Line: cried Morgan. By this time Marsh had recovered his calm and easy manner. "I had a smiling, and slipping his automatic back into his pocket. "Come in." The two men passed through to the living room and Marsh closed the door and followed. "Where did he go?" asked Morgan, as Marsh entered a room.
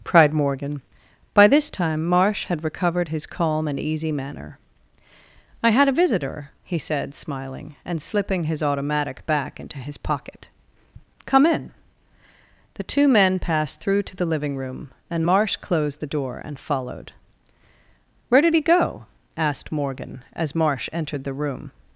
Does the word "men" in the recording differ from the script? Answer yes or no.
no